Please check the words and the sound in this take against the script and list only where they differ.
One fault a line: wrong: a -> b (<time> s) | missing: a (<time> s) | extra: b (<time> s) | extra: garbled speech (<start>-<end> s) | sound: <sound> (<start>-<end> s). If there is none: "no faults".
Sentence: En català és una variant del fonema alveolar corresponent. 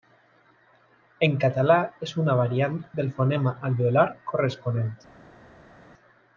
no faults